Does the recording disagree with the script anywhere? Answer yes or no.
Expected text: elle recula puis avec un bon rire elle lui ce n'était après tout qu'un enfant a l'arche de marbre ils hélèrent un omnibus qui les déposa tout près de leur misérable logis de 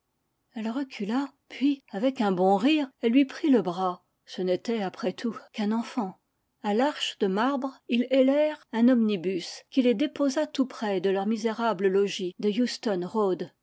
yes